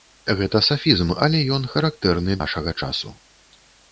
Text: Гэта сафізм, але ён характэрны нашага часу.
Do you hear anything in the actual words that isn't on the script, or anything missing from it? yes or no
no